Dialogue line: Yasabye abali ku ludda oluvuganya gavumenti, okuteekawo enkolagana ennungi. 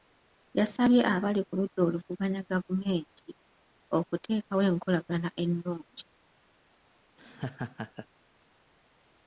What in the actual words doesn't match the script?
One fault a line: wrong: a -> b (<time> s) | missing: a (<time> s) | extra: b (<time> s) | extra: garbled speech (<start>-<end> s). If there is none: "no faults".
no faults